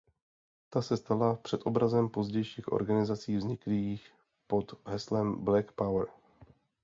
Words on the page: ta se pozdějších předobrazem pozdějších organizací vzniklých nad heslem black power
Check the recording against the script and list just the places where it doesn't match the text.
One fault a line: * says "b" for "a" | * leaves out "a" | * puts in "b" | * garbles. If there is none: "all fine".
* says "stala" for "pozdějších"
* says "pod" for "nad"